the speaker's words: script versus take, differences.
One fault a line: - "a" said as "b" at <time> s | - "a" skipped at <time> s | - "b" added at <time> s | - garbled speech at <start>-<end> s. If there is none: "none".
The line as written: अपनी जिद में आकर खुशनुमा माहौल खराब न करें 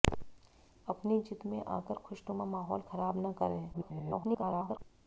- garbled speech at 3.7-4.8 s